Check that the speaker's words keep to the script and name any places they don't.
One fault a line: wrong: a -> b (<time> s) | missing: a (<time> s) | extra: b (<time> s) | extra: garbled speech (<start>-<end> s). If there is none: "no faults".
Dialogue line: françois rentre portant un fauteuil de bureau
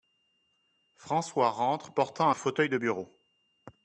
no faults